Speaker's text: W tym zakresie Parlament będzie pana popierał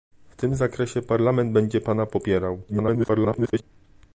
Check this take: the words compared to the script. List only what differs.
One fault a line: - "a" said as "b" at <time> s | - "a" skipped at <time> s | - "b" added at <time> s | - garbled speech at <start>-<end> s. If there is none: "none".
- garbled speech at 2.7-3.6 s